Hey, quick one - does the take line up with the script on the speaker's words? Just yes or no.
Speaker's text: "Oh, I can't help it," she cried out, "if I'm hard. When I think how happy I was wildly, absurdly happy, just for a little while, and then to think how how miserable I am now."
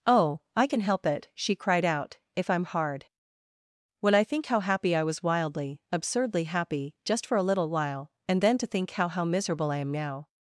no